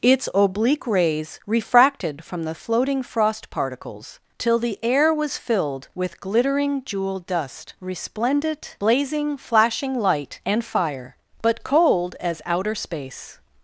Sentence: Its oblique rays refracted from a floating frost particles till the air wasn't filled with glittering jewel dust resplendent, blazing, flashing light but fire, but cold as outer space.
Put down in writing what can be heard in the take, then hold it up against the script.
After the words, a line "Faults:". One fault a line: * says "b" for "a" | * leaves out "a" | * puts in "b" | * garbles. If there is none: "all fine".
Its oblique rays refracted from the floating frost particles till the air was filled with glittering jewel dust resplendent, blazing, flashing light and fire, but cold as outer space.
Faults:
* says "the" for "a"
* says "was" for "wasn't"
* says "and" for "but"